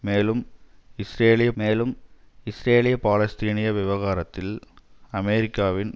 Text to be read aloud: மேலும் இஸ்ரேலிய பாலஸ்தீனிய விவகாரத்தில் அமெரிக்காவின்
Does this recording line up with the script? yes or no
no